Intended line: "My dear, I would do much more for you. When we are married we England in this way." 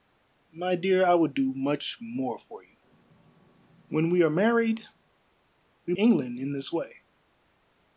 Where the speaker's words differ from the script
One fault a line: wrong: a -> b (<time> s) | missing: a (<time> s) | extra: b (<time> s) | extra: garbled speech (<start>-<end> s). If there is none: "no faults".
no faults